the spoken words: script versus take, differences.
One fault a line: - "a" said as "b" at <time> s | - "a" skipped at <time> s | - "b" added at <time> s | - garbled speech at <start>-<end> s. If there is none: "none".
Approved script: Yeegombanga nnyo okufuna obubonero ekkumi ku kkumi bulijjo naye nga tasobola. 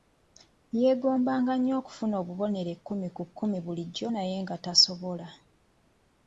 none